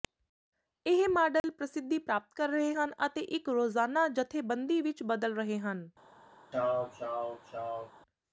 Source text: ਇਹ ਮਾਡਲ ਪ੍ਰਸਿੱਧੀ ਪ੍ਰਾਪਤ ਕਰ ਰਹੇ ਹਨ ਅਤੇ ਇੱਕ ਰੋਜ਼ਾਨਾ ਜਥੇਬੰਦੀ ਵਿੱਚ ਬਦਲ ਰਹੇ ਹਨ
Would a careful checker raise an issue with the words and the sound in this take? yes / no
yes